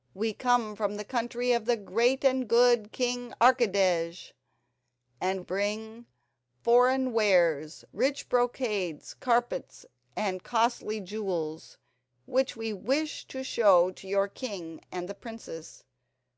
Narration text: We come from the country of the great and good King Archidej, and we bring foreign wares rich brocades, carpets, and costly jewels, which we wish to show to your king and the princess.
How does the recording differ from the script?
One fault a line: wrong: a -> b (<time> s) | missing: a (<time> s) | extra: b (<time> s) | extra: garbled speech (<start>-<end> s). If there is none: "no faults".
missing: we (5.4 s)